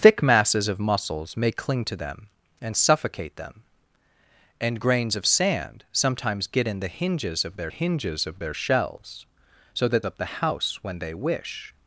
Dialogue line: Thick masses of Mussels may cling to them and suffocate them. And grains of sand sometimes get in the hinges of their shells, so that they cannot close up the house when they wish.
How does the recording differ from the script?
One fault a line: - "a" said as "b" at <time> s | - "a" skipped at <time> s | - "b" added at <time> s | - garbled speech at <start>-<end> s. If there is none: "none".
- "hinges of their" added at 7.7 s
- "they cannot close" skipped at 10.0 s